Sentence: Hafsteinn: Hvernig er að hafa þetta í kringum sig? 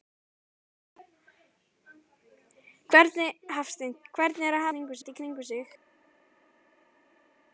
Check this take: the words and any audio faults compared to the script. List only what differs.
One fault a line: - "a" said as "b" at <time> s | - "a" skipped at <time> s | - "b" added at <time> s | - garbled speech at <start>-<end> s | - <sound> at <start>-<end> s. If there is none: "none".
- "hafa" said as "kringum" at 4.7 s